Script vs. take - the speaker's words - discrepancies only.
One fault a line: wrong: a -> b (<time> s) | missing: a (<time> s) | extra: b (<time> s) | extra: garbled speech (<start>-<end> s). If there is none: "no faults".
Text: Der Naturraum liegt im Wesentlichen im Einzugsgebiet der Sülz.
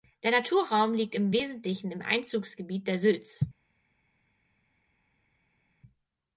no faults